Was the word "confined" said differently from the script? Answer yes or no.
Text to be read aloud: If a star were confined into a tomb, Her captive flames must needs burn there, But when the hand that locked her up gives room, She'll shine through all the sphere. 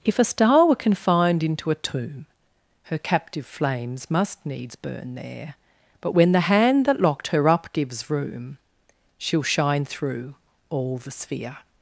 no